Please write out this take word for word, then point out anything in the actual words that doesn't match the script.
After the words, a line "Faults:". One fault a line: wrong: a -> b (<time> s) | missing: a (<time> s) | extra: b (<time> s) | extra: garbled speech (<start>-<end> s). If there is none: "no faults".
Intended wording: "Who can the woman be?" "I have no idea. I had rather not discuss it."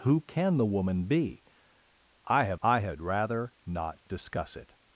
"Who can the woman be?" "I have. I had rather not discuss it."
Faults:
missing: no idea (2.6 s)